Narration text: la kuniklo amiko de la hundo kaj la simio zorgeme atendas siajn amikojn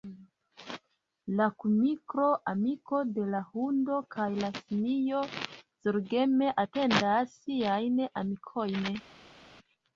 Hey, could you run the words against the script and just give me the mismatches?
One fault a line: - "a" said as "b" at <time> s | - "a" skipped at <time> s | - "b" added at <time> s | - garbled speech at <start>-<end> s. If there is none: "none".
none